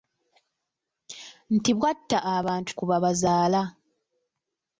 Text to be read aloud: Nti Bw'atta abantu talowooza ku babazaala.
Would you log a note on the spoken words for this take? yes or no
yes